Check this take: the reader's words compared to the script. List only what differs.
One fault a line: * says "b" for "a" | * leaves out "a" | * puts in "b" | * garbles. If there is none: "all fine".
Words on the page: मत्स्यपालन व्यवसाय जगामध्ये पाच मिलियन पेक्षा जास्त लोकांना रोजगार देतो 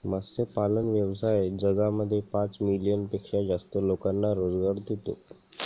all fine